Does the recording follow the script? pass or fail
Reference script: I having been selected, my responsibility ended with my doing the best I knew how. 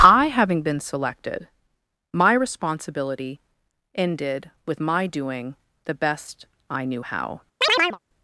pass